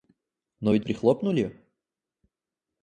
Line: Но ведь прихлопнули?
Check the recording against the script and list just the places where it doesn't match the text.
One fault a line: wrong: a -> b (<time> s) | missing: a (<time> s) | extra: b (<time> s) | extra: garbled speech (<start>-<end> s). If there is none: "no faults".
no faults